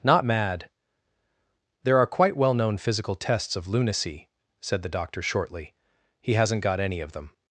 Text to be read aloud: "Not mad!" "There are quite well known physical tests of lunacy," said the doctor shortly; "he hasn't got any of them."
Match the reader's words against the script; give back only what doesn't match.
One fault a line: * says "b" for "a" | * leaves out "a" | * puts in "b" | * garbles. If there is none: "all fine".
all fine